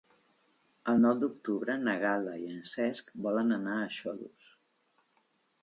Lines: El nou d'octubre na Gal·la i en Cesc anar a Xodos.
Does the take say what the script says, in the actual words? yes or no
no